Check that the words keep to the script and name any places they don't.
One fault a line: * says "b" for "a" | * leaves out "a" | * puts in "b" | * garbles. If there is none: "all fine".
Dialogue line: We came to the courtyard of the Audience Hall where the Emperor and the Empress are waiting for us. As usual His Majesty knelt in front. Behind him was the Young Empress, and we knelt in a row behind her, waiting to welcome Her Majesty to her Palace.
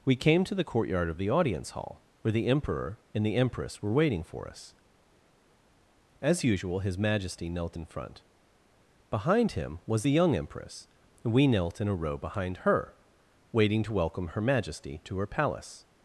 * says "were" for "are"